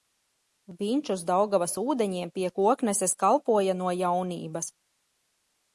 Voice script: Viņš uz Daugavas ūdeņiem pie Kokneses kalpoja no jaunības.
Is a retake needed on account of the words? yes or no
no